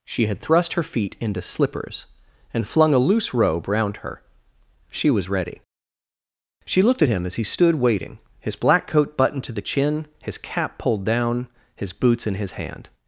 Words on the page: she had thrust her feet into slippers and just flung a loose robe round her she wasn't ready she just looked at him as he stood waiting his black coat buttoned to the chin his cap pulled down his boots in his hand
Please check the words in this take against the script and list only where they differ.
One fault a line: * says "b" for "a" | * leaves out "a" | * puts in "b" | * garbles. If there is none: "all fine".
* leaves out "just"
* says "was" for "wasn't"
* leaves out "just"